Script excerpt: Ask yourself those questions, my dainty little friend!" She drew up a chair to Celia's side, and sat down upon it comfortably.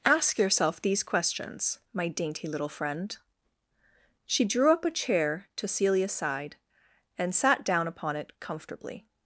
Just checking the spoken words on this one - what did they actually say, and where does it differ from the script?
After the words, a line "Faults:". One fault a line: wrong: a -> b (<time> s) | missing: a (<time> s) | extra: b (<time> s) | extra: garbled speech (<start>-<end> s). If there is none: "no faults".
Ask yourself these questions, my dainty little friend!" She drew up a chair to Celia's side, and sat down upon it comfortably.
Faults:
wrong: those -> these (0.8 s)